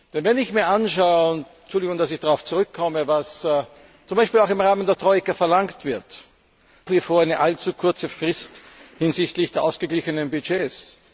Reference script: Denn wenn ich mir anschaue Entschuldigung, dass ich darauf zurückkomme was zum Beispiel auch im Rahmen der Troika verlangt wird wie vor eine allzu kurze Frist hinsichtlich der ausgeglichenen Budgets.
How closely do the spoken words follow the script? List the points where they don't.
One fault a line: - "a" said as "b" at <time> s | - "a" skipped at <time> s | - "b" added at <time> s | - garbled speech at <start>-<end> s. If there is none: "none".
none